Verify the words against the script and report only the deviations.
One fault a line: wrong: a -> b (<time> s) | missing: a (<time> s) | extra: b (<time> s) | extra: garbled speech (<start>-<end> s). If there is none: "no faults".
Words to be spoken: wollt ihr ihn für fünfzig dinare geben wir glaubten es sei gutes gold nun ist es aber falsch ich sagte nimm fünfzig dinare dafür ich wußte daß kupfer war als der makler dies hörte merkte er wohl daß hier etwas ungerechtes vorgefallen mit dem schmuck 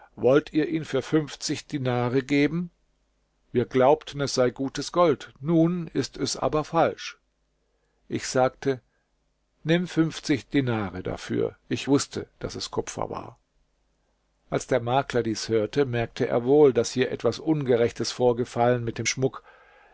extra: es (12.5 s)